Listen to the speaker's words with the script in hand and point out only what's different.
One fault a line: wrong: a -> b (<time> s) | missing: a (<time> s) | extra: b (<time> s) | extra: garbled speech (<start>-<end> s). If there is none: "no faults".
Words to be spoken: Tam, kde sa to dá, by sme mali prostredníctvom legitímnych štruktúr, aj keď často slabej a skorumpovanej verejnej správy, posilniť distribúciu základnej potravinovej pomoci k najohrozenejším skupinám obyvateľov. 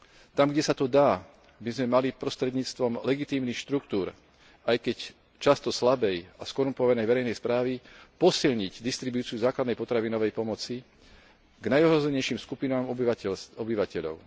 no faults